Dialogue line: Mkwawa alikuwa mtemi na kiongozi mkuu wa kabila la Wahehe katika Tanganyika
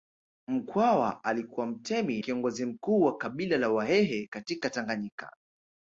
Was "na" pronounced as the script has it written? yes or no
no